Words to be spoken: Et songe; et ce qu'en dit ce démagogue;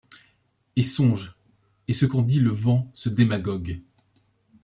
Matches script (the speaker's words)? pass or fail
fail